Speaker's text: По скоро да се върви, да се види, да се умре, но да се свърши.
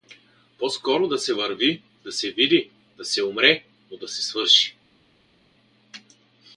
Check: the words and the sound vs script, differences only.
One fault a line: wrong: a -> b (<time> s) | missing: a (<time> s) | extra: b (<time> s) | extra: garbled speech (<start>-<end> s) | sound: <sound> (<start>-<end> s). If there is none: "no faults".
no faults